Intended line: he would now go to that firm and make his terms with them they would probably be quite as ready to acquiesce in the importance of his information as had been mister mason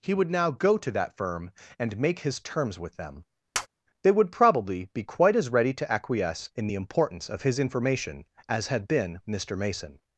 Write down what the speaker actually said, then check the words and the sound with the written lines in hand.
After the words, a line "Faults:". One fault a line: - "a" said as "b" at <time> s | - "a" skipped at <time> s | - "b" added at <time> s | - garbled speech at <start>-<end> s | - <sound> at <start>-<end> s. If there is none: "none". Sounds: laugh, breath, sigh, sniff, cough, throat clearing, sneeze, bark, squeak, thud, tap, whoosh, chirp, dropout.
he would now go to that firm and make his terms with them they would probably be quite as ready to acquiesce in the importance of his information as had been mister mason
Faults:
- tap at 3.5-3.7 s